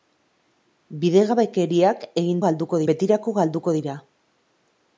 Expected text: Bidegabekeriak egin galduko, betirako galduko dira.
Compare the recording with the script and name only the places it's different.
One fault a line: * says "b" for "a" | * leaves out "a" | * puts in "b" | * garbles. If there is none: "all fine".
all fine